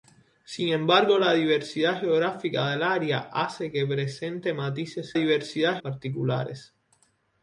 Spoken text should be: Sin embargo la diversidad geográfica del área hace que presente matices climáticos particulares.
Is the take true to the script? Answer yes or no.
no